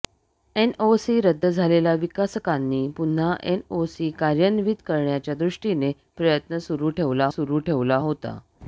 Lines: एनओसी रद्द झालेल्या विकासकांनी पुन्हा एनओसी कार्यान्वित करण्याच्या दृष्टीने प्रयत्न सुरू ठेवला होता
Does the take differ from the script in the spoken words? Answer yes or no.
yes